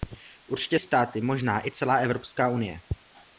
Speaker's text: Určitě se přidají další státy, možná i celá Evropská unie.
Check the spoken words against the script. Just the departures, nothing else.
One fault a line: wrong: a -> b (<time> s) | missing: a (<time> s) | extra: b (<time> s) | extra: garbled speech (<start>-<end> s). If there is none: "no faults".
missing: se přidají další (0.8 s)